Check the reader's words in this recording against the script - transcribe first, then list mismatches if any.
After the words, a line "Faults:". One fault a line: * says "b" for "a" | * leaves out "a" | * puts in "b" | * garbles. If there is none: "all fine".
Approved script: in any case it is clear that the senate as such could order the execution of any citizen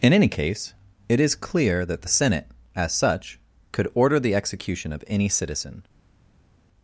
in any case it is clear that the senate as such could order the execution of any citizen
Faults:
all fine